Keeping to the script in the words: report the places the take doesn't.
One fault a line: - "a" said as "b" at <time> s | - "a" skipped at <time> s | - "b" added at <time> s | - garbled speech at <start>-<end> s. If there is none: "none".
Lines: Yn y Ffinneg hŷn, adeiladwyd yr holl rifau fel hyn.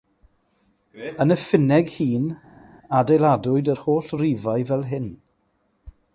none